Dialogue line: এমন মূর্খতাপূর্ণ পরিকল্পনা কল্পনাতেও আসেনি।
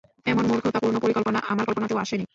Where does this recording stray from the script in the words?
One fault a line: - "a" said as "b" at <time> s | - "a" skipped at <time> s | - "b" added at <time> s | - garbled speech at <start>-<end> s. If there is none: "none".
- "আমার" added at 1.5 s